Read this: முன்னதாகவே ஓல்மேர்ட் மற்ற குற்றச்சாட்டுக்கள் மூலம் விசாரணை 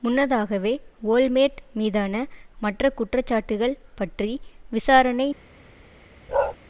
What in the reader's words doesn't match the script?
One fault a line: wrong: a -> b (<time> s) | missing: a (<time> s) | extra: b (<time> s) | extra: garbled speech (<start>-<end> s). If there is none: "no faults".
extra: மீதான (1.7 s)
wrong: மூலம் -> பற்றி (4.0 s)